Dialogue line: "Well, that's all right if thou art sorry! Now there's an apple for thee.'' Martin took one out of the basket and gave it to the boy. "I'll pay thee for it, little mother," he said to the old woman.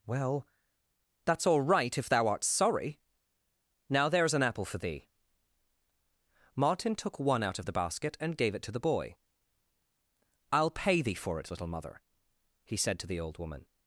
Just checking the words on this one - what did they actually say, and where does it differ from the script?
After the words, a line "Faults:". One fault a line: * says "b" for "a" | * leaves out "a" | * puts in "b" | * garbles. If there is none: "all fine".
"Well, that's all right if thou art sorry! Now there's an apple for thee.'' Martin took one out of the basket and gave it to the boy. "I'll pay thee for it, little mother," he said to the old woman.
Faults:
all fine